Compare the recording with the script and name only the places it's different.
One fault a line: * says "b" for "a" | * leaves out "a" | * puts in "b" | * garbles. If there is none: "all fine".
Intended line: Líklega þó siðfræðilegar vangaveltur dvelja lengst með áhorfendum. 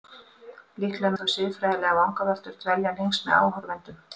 all fine